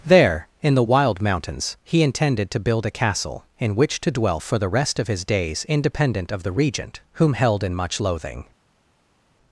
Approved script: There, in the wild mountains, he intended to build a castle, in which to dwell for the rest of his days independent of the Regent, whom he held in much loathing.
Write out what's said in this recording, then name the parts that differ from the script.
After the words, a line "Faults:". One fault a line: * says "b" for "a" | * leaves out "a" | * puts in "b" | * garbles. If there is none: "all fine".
There, in the wild mountains, he intended to build a castle, in which to dwell for the rest of his days independent of the Regent, whom held in much loathing.
Faults:
* leaves out "he"